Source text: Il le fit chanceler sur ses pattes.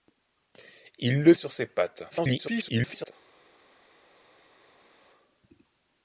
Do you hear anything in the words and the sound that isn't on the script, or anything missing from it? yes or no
yes